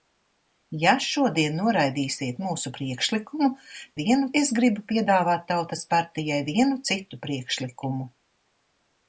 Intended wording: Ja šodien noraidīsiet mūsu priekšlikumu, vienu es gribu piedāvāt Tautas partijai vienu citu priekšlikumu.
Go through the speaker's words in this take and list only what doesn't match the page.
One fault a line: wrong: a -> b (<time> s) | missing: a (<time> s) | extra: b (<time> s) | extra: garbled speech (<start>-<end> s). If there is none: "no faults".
no faults